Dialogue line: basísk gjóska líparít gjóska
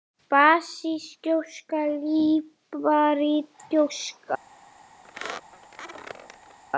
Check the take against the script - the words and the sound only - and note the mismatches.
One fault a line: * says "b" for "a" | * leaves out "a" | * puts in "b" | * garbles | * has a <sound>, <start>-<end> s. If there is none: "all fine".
* has a squeak, 5.0-6.6 s